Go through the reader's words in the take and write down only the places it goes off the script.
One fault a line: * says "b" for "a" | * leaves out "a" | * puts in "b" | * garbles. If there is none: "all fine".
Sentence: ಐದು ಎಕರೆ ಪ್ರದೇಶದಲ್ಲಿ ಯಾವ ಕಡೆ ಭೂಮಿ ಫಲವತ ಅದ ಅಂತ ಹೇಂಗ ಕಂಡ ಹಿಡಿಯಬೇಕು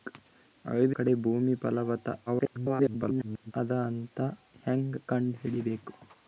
* leaves out "ಎಕರೆ ಪ್ರದೇಶದಲ್ಲಿ ಯಾವ"
* garbles